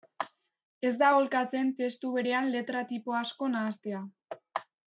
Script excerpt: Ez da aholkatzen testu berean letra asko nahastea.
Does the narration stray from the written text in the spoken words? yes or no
yes